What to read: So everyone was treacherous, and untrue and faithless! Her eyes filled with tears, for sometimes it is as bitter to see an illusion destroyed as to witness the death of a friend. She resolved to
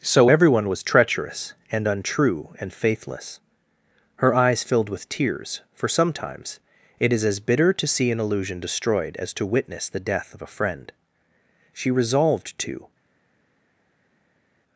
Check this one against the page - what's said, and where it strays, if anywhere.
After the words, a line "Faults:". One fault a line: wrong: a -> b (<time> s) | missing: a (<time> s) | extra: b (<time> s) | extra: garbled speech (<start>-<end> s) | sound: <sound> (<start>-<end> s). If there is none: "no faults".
So everyone was treacherous, and untrue and faithless! Her eyes filled with tears, for sometimes it is as bitter to see an illusion destroyed as to witness the death of a friend. She resolved to
Faults:
no faults